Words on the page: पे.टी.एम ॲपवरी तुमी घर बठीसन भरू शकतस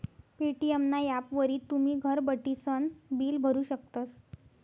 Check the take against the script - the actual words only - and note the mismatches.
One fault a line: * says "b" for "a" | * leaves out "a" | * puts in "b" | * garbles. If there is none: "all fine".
* puts in "ना"
* puts in "बिल"